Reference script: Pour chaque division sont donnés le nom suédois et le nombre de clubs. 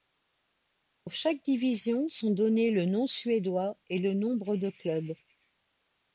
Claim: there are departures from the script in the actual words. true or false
false